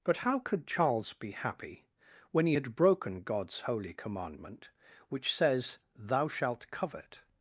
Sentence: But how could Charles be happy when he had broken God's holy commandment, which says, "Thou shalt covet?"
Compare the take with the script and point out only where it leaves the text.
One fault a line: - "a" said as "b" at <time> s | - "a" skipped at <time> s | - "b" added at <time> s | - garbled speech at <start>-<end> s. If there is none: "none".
none